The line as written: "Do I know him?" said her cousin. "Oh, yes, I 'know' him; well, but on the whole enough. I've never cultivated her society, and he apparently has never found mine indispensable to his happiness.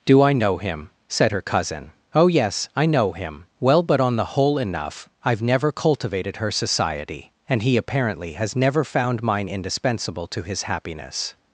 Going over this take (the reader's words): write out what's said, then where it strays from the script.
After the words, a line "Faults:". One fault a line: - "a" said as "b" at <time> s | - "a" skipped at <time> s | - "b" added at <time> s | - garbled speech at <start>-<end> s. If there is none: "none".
"Do I know him?" said her cousin. "Oh, yes, I 'know' him; well, but on the whole enough. I've never cultivated her society, and he apparently has never found mine indispensable to his happiness.
Faults:
none